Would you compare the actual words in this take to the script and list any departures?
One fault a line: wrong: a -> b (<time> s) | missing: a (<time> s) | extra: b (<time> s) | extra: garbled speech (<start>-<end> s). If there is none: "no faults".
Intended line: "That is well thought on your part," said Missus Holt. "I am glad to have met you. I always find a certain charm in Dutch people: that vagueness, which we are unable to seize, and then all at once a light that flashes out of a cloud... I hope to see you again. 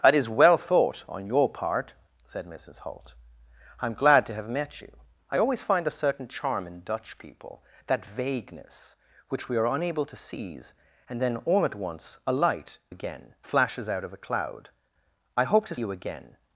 wrong: that -> again (12.9 s)
missing: see (15.8 s)